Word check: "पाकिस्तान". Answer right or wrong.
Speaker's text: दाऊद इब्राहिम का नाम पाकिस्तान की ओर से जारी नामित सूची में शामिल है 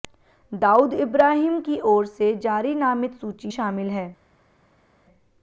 wrong